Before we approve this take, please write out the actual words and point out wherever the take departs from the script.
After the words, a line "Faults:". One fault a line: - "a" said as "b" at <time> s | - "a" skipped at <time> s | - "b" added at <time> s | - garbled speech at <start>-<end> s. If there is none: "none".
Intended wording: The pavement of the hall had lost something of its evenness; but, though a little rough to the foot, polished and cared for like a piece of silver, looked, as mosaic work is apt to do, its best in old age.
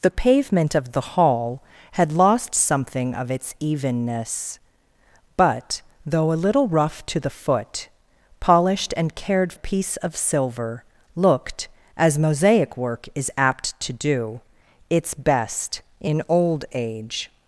The pavement of the hall had lost something of its evenness; but, though a little rough to the foot, polished and cared a piece of silver, looked, as mosaic work is apt to do, its best in old age.
Faults:
- "for like" skipped at 9.5 s